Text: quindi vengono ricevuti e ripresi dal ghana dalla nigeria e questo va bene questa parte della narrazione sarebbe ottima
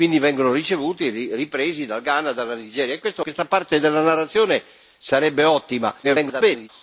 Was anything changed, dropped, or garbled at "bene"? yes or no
yes